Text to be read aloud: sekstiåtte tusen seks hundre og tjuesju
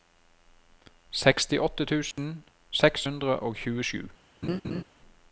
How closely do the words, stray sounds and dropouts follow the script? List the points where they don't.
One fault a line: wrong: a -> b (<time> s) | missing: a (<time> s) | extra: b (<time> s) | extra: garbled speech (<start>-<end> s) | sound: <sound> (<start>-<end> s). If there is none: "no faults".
sound: dropout (2.1-2.2 s)
sound: laugh (4.4-4.8 s)